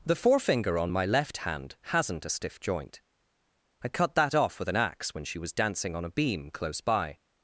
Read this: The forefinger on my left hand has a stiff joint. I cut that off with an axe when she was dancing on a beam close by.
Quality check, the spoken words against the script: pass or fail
fail